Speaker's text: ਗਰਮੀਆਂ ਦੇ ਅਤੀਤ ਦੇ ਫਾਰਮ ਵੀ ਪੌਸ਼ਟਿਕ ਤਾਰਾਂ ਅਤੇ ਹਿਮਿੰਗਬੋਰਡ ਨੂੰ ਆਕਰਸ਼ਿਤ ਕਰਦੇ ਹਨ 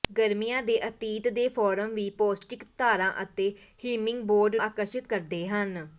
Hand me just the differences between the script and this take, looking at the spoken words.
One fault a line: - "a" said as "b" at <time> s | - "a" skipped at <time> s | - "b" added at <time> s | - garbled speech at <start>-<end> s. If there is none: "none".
- "ਨੂੰ" skipped at 4.6 s